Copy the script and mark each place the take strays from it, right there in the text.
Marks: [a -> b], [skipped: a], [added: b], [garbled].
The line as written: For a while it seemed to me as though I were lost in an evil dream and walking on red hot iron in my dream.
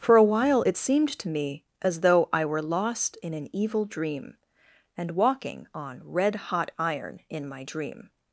For a while it seemed to me as though I were lost in an evil dream and walking on red hot iron in my dream.